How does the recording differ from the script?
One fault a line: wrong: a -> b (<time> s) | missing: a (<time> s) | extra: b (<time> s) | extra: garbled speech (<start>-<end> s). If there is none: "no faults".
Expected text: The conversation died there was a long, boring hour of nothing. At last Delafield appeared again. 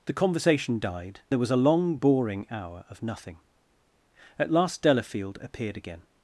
no faults